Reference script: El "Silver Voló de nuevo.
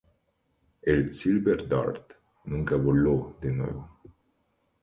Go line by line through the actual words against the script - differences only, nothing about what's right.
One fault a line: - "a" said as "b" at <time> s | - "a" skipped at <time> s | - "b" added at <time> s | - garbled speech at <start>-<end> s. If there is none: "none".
- "Dart nunca" added at 1.7 s